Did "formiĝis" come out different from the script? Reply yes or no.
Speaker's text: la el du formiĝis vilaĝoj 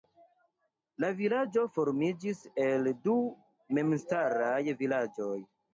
yes